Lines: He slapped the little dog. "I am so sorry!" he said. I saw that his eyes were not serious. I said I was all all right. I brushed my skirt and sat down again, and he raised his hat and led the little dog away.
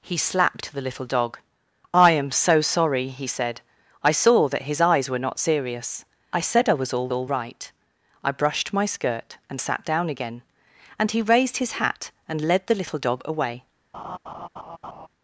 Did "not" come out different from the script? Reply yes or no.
no